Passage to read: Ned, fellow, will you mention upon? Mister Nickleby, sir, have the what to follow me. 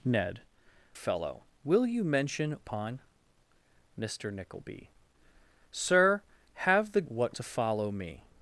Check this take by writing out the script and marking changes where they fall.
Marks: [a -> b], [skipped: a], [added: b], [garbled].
Ned, fellow, will you mention upon? Mister Nickleby, sir, have the what to follow me.